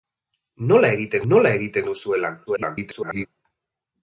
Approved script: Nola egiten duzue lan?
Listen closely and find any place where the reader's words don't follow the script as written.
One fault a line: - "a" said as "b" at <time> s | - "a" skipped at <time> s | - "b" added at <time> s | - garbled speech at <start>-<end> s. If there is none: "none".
- "nola egiten" added at 1.3 s
- garbled speech at 2.5-3.3 s